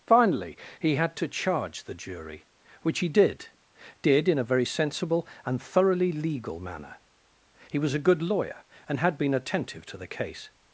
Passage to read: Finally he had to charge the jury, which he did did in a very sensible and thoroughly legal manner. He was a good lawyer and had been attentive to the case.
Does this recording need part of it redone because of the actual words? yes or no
no